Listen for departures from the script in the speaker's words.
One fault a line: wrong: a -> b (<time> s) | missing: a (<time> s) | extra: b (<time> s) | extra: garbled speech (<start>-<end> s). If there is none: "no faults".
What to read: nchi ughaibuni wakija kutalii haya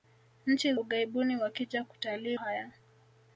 no faults